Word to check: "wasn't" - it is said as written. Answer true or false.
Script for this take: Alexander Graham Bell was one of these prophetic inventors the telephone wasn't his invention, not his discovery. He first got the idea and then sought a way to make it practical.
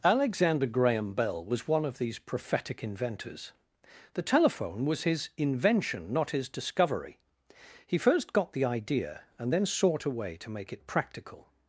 false